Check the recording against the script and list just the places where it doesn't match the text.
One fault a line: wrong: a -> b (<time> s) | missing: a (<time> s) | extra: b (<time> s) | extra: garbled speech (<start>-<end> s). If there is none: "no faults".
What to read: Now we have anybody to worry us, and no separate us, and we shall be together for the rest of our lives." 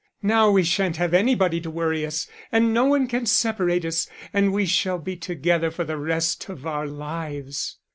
extra: shan't (0.6 s)
extra: one can (2.8 s)